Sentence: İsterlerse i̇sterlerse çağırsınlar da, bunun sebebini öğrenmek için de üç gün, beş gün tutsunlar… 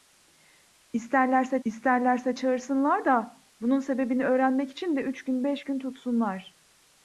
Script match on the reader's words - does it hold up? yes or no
yes